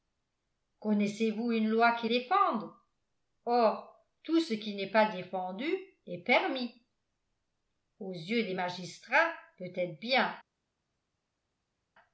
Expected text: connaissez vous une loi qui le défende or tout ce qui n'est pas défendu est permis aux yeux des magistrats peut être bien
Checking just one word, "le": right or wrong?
wrong